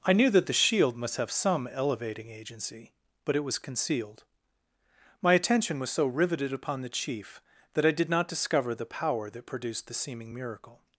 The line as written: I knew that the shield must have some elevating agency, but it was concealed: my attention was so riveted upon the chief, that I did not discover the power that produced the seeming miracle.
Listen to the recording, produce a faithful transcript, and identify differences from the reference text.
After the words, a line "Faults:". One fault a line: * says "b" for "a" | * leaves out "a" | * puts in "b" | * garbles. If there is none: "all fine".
I knew that the shield must have some elevating agency, but it was concealed: my attention was so riveted upon the chief, that I did not discover the power that produced the seeming miracle.
Faults:
all fine